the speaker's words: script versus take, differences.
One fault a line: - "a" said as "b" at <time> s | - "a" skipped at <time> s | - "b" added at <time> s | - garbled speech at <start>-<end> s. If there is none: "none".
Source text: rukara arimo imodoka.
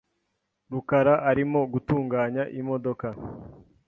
- "gutunganya" added at 1.7 s